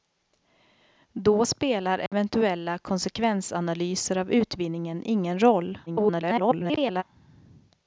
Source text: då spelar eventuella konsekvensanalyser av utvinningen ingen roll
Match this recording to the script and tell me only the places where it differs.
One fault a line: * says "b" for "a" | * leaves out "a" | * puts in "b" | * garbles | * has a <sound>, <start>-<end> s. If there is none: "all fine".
* has a dropout, 2.1-2.1 s
* garbles